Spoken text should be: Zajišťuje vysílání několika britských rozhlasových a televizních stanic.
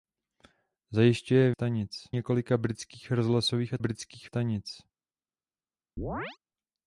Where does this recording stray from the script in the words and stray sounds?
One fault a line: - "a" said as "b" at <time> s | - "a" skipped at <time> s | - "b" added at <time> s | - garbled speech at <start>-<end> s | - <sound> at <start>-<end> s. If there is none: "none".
- "vysílání" said as "stanic" at 1.5 s
- "televizních" said as "britských" at 3.8 s
- chirp at 6.0-6.4 s